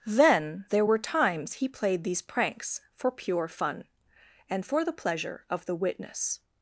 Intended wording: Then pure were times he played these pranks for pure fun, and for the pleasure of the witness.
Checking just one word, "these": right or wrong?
right